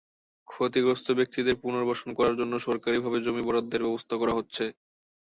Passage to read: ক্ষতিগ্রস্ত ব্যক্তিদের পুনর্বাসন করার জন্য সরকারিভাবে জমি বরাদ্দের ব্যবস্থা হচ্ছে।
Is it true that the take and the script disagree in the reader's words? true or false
true